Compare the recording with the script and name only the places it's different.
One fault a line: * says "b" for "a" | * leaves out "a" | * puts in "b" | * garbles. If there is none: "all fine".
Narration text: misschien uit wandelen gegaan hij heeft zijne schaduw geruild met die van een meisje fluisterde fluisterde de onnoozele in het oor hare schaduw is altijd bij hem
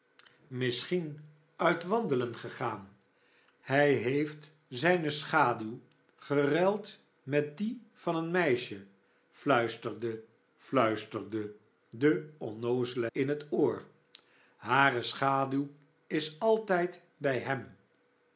all fine